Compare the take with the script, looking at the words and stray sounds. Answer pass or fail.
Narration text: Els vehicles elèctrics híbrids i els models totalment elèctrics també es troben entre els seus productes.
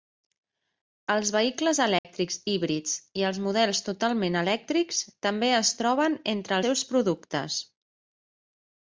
fail